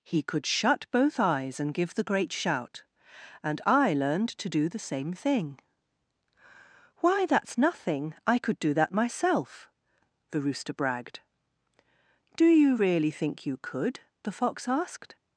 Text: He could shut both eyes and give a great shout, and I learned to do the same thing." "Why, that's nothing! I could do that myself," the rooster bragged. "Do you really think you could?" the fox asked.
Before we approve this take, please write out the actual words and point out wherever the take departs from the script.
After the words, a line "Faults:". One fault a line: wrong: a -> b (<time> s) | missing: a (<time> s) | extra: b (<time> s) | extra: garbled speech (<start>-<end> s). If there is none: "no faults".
He could shut both eyes and give the great shout, and I learned to do the same thing." "Why, that's nothing! I could do that myself," the rooster bragged. "Do you really think you could?" the fox asked.
Faults:
wrong: a -> the (1.9 s)